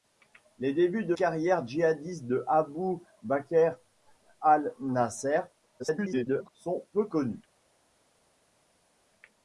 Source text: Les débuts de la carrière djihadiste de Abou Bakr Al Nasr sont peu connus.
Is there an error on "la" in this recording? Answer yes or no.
yes